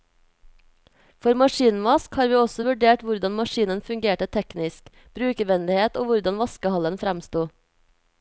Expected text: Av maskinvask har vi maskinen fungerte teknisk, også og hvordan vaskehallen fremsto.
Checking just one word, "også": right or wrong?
wrong